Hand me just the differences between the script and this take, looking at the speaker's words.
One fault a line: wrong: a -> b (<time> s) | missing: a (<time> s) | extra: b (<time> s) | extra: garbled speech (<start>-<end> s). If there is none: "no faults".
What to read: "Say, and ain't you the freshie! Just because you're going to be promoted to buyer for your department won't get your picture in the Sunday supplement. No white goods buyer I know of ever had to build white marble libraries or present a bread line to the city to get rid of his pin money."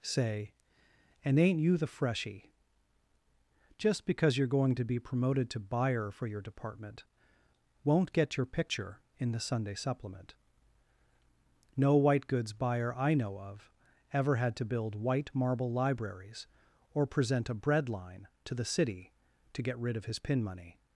no faults